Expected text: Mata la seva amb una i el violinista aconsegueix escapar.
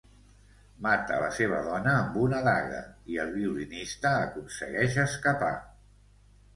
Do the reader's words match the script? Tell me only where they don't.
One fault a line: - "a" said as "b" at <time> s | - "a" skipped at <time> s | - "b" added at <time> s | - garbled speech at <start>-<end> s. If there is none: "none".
- "dona" added at 1.7 s
- "daga" added at 2.5 s